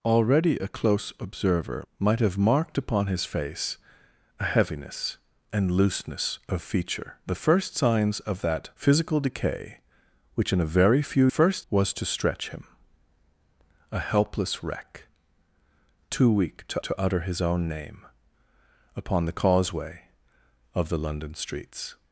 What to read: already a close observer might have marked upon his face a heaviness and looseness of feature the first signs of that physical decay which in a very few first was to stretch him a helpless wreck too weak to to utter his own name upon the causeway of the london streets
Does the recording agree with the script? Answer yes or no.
yes